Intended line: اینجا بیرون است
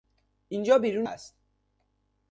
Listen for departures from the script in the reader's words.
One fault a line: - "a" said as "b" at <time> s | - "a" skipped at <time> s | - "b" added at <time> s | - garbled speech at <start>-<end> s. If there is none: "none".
none